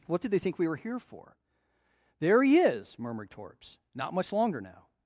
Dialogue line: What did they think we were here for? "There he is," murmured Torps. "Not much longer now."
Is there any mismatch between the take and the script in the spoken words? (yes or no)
no